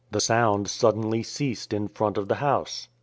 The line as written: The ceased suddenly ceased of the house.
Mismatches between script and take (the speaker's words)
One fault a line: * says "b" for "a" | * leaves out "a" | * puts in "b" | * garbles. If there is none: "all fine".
* says "sound" for "ceased"
* puts in "in front"